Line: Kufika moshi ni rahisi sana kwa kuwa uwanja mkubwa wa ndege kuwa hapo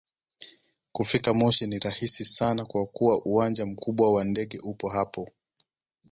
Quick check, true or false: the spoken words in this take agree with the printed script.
false